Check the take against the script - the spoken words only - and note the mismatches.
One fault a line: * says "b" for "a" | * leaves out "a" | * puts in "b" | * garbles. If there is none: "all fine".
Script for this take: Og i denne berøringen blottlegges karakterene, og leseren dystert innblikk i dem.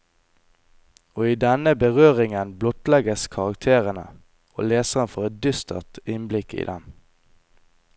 * puts in "får et"